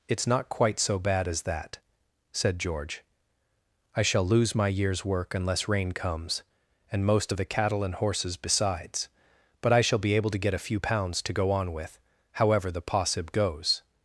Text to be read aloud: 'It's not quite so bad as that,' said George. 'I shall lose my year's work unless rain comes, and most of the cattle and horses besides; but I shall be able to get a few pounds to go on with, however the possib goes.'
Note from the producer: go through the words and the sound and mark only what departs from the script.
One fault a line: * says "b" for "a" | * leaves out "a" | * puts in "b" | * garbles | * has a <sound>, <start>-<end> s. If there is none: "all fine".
all fine